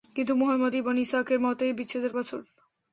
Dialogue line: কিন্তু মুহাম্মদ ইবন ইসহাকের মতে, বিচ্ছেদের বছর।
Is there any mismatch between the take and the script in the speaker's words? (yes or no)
no